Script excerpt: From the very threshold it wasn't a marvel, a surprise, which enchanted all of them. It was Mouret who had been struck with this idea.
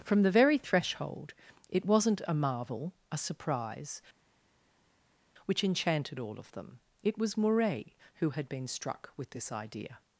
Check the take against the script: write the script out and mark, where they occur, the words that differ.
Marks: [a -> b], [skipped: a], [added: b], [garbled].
From the very threshold it wasn't a marvel, a surprise, which enchanted all of them. It was Mouret who had been struck with this idea.